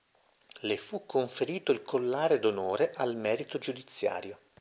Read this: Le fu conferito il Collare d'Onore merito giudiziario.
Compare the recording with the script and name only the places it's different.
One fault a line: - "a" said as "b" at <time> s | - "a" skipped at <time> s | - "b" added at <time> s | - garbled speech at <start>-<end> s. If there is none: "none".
- "al" added at 3.0 s